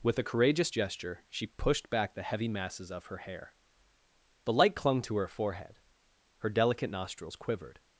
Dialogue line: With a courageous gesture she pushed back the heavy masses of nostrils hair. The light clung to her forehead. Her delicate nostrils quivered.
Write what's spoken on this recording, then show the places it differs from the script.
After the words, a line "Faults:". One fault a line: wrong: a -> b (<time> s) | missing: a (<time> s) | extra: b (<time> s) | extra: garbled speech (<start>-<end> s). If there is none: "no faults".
With a courageous gesture she pushed back the heavy masses of her hair. The light clung to her forehead. Her delicate nostrils quivered.
Faults:
wrong: nostrils -> her (3.1 s)